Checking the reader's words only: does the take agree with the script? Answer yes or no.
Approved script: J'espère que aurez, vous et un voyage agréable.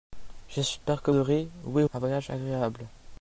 yes